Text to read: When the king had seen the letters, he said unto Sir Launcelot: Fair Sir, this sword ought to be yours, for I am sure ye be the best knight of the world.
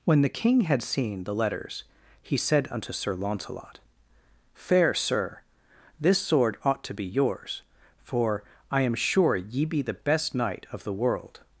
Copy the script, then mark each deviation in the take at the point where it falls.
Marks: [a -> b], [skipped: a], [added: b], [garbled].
When the king had seen the letters, he said unto Sir Launcelot: Fair Sir, this sword ought to be yours, for I am sure ye be the best knight of the world.